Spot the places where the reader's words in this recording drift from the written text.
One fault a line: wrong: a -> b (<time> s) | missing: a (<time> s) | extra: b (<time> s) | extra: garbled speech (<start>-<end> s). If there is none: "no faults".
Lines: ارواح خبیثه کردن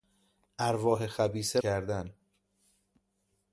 no faults